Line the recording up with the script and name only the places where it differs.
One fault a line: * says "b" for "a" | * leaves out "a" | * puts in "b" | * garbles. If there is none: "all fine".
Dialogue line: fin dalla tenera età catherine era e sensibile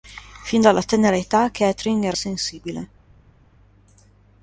all fine